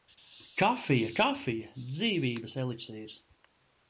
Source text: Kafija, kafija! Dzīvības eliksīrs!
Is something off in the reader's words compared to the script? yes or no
no